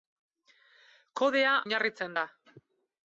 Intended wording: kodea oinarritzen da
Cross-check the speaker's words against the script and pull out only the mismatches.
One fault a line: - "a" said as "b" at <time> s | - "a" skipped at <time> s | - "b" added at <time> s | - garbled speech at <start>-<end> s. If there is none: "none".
none